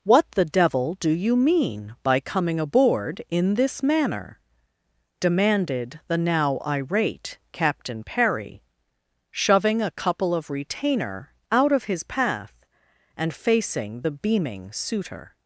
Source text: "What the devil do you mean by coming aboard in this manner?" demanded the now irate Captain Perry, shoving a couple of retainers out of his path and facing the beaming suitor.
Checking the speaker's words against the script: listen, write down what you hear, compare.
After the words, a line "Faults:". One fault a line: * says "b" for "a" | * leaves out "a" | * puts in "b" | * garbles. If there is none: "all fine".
"What the devil do you mean by coming aboard in this manner?" demanded the now irate Captain Perry, shoving a couple of retainer out of his path and facing the beaming suitor.
Faults:
* says "retainer" for "retainers"